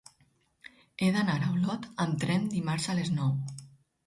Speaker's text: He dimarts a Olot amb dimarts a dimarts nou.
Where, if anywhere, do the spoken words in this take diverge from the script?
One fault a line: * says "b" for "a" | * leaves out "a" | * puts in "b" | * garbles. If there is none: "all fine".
* says "d'anar" for "dimarts"
* puts in "tren"
* says "les" for "dimarts"